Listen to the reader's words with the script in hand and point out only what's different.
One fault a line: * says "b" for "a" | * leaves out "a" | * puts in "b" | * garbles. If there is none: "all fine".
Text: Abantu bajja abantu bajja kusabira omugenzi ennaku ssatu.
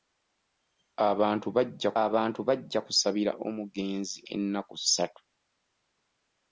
all fine